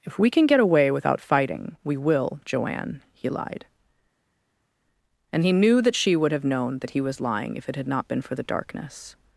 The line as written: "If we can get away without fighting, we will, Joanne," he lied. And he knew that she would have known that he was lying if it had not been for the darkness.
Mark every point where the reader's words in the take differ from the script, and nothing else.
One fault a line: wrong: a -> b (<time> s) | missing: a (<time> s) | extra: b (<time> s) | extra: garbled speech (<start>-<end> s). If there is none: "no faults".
no faults